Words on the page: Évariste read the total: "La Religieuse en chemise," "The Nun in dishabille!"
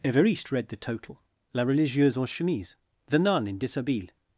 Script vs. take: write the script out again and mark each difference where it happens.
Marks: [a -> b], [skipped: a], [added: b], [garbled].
Évariste read the total: "La Religieuse en chemise," "The Nun in dishabille!"